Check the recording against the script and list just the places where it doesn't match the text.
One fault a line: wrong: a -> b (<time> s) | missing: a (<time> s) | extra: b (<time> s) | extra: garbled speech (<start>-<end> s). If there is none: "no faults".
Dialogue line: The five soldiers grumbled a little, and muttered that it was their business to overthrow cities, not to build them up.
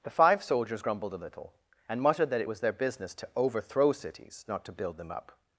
no faults